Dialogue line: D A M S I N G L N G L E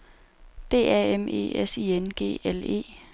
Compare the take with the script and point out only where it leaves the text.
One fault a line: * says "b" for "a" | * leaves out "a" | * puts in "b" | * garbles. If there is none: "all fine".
* puts in "E"
* leaves out "N G L"